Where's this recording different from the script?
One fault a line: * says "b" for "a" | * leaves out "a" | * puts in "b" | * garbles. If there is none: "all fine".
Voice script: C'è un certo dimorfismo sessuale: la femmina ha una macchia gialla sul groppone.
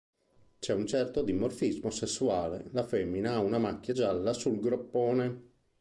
all fine